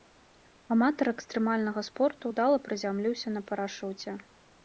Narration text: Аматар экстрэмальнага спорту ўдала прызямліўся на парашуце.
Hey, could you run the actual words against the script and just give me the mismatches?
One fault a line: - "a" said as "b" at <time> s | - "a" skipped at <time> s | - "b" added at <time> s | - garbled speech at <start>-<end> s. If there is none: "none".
none